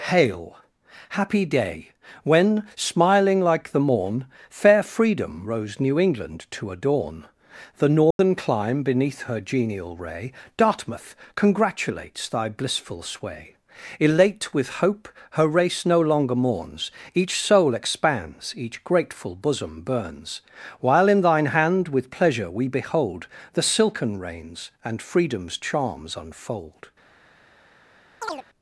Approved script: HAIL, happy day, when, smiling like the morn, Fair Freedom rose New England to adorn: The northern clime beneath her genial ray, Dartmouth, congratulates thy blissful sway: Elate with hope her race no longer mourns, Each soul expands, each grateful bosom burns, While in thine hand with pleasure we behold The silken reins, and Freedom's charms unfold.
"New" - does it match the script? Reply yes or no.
yes